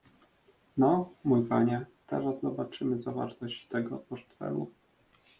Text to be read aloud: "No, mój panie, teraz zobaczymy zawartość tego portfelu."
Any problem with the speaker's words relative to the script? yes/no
no